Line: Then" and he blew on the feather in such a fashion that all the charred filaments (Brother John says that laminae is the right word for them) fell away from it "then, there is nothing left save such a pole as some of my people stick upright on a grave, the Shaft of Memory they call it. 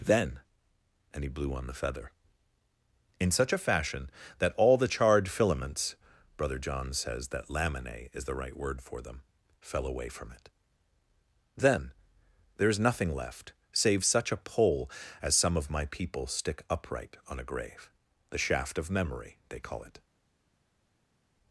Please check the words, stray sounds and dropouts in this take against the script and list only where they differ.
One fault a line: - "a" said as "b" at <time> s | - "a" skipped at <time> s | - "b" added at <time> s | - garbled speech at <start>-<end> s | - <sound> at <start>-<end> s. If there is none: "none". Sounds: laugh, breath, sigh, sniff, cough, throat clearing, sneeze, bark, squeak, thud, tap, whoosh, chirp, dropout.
none